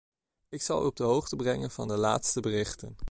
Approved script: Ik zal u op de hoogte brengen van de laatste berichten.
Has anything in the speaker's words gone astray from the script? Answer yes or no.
no